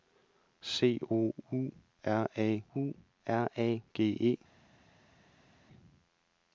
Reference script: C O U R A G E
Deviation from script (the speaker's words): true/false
true